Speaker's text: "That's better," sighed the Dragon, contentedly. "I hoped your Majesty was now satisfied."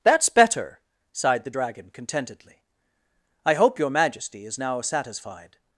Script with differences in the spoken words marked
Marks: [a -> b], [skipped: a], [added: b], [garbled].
"That's better," sighed the Dragon, contentedly. "I [hoped -> hope] your Majesty [was -> is] now satisfied."